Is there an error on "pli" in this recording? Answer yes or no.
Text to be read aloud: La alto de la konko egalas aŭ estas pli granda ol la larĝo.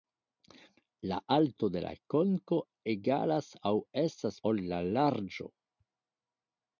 yes